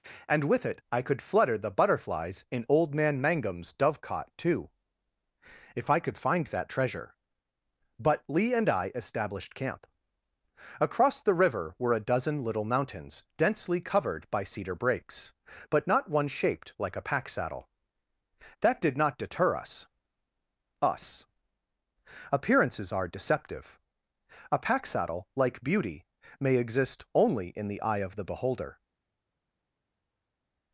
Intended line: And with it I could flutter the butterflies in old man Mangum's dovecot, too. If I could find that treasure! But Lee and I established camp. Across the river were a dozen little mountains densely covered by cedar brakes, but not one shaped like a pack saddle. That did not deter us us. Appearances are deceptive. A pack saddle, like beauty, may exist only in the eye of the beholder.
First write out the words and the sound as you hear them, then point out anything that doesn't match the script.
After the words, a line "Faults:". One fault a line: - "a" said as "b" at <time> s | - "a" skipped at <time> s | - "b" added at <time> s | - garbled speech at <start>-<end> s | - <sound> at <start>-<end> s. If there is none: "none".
And with it I could flutter the butterflies in old man Mangum's dovecot, too. If I could find that treasure! But Lee and I established camp. Across the river were a dozen little mountains densely covered by cedar brakes, but not one shaped like a pack saddle. That did not deter us us. Appearances are deceptive. A pack saddle, like beauty, may exist only in the eye of the beholder.
Faults:
none